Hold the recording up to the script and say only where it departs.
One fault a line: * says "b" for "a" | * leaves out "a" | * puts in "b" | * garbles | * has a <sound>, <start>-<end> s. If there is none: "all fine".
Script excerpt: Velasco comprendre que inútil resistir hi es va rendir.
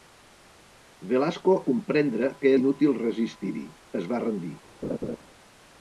* has a laugh, 4.8-5.2 s